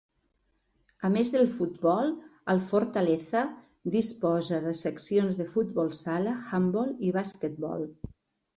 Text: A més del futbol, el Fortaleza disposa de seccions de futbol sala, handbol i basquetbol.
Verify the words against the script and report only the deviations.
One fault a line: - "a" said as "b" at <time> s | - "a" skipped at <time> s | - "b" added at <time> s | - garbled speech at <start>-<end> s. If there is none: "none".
none